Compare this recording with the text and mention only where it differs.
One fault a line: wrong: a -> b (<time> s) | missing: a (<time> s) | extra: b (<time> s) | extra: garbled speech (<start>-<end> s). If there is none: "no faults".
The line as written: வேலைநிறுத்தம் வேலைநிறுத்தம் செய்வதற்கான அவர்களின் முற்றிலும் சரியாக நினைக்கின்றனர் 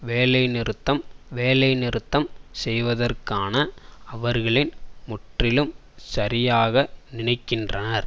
no faults